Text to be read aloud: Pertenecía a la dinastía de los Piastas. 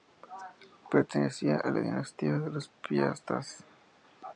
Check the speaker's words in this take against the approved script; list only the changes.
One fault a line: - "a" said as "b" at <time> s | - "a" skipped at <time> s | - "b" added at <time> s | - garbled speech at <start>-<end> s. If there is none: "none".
none